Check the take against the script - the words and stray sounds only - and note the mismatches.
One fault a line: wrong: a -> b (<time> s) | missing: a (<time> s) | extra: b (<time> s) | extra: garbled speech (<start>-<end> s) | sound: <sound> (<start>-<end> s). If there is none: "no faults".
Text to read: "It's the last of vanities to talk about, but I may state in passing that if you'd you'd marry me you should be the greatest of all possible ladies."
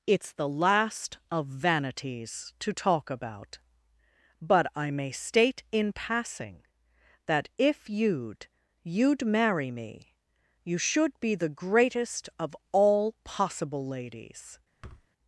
sound: thud (14.8-15.1 s)